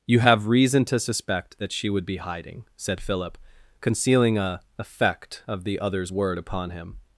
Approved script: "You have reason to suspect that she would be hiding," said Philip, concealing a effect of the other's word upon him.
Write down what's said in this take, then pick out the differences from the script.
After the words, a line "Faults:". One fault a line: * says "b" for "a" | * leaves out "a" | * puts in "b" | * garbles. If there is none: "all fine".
"You have reason to suspect that she would be hiding," said Philip, concealing a effect of the other's word upon him.
Faults:
all fine